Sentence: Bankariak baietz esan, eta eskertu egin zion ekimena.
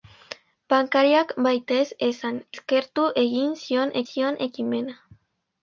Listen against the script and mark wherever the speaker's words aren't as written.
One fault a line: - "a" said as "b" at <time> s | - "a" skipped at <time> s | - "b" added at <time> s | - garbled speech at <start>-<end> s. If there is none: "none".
- "eta" skipped at 2.4 s
- "zion" added at 4.1 s